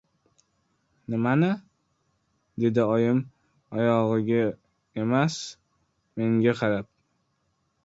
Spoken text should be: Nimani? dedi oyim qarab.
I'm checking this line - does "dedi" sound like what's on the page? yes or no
yes